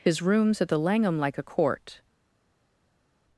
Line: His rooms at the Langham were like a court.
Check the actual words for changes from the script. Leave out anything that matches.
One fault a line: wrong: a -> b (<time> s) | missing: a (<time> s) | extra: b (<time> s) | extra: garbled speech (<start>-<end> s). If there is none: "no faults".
missing: were (1.2 s)